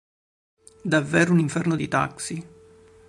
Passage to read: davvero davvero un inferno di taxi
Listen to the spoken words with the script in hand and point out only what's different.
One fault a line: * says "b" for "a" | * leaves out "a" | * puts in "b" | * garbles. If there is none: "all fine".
* leaves out "davvero"